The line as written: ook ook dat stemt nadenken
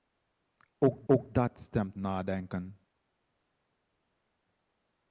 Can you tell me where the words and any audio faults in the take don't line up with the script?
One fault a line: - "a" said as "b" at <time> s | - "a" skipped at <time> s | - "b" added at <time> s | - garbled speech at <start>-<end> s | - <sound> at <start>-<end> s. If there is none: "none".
none